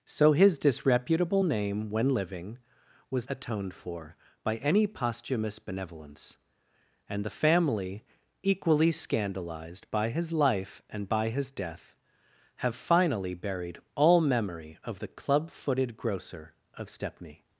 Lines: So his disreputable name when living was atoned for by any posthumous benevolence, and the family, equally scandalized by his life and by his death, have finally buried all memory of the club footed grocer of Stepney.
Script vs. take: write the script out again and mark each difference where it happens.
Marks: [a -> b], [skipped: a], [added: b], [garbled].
So his disreputable name when living was atoned for by any posthumous benevolence, and the family, equally scandalized by his life and by his death, have finally buried all memory of the club footed grocer of Stepney.